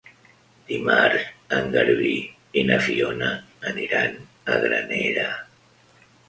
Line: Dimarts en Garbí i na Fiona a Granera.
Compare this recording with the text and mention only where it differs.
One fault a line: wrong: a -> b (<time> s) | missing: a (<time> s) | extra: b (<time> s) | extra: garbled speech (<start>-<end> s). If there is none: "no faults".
extra: aniran (3.7 s)